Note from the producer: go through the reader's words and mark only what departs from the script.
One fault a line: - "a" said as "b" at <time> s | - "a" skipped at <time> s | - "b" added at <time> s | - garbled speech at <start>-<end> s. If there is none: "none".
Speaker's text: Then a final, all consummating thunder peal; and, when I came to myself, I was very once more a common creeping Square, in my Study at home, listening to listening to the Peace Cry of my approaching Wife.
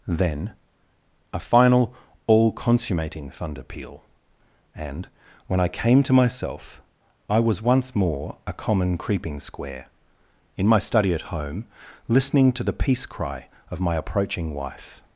- "very" skipped at 7.6 s
- "listening to" skipped at 12.6 s